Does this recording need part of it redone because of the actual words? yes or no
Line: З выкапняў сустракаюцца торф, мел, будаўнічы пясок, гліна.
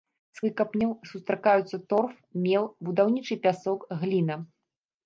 no